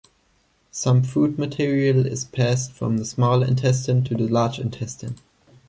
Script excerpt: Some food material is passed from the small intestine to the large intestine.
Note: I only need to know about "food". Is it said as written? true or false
true